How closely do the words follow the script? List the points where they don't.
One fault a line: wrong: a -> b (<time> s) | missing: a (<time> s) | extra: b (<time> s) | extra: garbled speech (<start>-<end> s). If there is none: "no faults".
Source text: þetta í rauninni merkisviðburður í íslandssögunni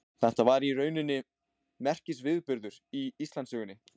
extra: var (0.5 s)